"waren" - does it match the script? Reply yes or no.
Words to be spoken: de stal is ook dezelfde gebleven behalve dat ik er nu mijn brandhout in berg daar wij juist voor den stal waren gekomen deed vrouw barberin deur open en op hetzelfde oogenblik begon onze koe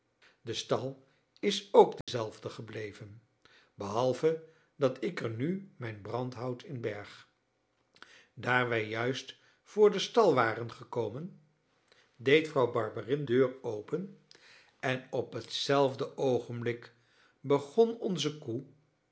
yes